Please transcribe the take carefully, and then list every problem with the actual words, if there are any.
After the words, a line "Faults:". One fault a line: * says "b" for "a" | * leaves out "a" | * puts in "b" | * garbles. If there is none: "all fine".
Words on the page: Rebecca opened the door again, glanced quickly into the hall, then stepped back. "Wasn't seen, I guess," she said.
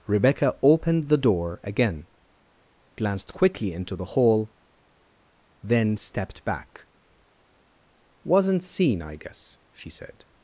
Rebecca opened the door again, glanced quickly into the hall, then stepped back. "Wasn't seen, I guess," she said.
Faults:
all fine